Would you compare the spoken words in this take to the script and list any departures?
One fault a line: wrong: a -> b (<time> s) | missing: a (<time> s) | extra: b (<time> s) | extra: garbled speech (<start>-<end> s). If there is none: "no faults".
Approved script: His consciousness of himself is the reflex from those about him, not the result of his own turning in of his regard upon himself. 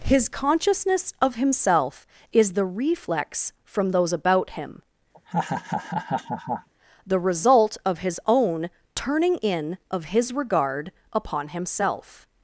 missing: not (4.8 s)